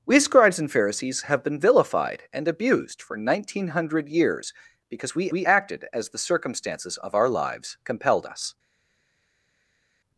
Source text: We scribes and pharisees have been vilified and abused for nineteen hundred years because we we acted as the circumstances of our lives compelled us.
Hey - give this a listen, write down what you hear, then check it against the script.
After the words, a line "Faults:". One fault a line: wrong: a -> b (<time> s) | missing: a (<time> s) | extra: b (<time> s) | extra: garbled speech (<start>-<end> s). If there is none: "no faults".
We scribes and pharisees have been vilified and abused for nineteen hundred years because we we acted as the circumstances of our lives compelled us.
Faults:
no faults